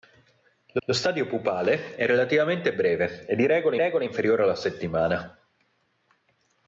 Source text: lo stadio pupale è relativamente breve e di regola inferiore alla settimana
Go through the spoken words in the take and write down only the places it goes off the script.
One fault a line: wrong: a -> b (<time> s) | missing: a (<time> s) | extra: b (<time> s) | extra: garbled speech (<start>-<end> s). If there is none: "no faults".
extra: lo (0.8 s)
extra: regola (3.8 s)